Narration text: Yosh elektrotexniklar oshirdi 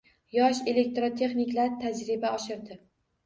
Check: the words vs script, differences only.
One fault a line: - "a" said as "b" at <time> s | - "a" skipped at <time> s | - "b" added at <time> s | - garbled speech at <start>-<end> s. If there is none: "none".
- "tajriba" added at 1.8 s